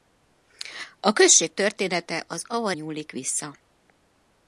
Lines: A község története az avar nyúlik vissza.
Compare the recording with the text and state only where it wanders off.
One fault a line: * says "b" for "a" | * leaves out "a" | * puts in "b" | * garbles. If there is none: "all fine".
all fine